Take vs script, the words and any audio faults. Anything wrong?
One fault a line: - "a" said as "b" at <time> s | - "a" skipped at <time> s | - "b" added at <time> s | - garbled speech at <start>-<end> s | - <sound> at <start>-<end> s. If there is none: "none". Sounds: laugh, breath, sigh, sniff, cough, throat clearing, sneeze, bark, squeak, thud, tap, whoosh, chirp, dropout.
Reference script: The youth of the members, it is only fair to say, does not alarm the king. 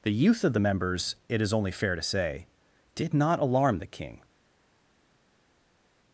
- "does" said as "did" at 2.9 s